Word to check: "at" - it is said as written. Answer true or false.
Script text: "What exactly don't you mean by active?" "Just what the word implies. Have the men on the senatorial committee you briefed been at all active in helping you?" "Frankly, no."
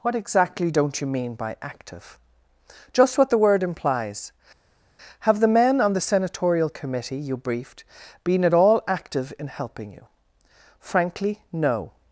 true